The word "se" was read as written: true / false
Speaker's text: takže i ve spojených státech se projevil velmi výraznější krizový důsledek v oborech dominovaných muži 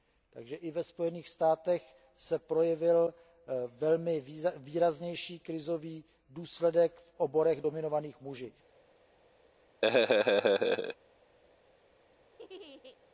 true